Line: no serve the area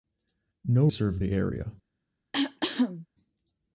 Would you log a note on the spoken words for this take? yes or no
no